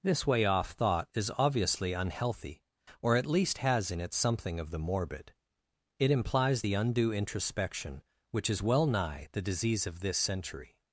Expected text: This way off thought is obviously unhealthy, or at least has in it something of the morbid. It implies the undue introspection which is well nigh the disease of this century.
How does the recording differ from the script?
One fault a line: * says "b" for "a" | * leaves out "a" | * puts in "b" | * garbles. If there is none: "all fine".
all fine